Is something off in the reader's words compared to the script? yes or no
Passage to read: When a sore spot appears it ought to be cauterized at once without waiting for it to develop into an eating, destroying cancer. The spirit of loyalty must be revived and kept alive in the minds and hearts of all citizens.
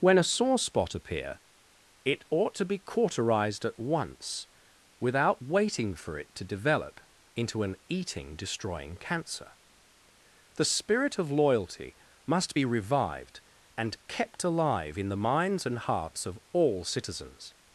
yes